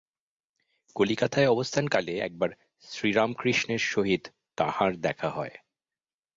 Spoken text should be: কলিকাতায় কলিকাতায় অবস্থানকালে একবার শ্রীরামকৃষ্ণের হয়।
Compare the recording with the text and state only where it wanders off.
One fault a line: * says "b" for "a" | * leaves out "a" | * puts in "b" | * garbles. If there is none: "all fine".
* leaves out "কলিকাতায়"
* puts in "সহিত তাঁহার দেখা"